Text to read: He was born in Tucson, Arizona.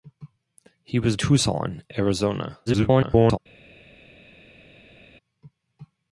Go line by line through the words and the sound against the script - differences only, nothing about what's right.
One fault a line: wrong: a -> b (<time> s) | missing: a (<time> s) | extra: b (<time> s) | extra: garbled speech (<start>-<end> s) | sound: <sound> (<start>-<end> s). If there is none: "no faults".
missing: born in (1.1 s)
extra: garbled speech (2.7-3.4 s)